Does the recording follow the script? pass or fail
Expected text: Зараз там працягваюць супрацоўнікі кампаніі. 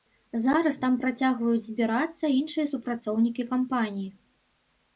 fail